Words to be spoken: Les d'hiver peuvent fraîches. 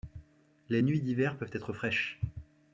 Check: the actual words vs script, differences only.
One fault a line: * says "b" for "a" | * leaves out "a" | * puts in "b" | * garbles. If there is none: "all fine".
* puts in "nuits"
* puts in "être"